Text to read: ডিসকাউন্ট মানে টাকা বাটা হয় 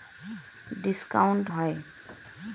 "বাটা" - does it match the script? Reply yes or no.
no